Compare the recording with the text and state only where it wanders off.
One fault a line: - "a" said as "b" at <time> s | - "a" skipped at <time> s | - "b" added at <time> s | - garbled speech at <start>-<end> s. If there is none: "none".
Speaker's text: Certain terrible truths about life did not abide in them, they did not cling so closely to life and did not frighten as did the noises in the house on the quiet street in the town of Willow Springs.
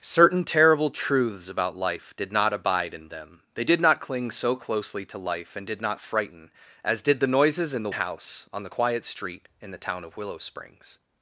none